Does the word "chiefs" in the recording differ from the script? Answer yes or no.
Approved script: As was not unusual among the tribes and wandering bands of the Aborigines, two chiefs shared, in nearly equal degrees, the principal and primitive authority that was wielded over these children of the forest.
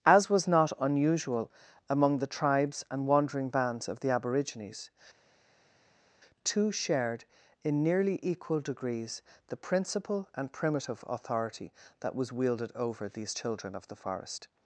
yes